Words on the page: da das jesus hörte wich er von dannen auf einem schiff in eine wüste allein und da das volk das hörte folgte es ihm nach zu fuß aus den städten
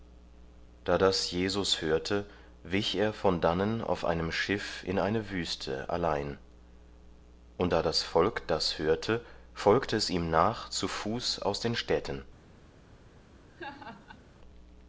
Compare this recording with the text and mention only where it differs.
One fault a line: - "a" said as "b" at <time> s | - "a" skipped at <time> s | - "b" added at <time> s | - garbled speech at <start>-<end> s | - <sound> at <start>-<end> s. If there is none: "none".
- laugh at 13.5-14.2 s